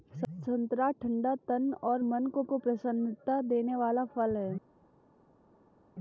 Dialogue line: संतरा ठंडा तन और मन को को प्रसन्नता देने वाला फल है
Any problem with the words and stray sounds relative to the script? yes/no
no